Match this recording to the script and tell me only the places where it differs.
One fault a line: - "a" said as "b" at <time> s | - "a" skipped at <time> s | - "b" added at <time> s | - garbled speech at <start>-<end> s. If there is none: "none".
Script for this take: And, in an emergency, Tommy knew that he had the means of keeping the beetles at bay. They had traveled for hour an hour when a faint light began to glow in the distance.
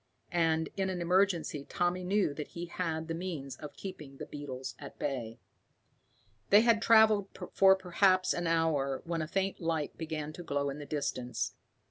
- "hour" said as "perhaps" at 7.7 s